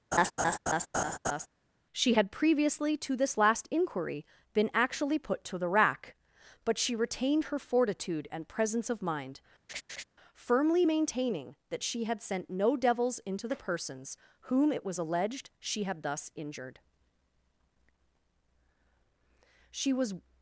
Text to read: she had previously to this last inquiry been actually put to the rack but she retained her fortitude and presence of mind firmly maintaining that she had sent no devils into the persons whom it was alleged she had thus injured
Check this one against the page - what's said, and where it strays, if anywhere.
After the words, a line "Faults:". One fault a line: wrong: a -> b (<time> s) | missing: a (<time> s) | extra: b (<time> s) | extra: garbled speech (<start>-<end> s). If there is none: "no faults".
she had previously to this last inquiry been actually put to the rack but she retained her fortitude and presence of mind firmly maintaining that she had sent no devils into the persons whom it was alleged she had thus injured she was
Faults:
extra: she was (19.7 s)